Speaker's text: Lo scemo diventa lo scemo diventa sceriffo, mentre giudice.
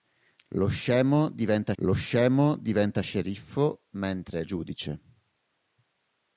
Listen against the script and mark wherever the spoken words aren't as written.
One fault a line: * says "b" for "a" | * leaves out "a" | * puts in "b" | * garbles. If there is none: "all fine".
all fine